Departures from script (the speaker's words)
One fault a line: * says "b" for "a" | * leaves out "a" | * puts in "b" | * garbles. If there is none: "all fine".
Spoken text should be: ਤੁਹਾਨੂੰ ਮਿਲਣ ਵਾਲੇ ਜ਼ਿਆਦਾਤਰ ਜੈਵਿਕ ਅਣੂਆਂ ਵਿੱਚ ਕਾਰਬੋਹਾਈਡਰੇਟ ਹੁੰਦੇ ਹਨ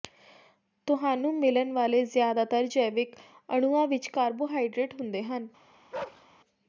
all fine